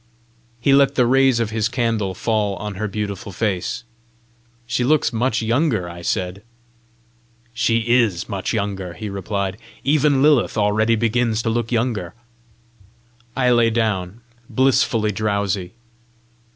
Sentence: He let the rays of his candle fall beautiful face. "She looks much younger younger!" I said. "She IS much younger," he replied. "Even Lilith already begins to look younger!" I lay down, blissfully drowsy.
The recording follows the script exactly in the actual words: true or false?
false